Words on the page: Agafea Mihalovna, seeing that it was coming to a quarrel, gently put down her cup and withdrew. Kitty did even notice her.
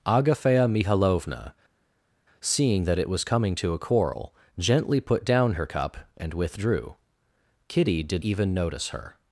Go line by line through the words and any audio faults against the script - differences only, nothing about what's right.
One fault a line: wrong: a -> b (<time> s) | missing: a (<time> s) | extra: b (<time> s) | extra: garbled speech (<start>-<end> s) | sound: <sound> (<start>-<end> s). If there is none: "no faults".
no faults